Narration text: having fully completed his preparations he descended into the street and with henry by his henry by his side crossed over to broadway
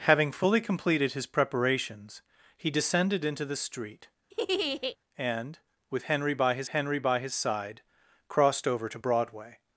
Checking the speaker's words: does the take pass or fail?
pass